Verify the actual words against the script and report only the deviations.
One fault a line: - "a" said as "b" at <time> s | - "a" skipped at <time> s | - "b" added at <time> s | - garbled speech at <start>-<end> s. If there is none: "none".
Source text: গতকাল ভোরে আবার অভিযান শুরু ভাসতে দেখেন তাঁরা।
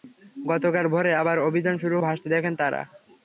none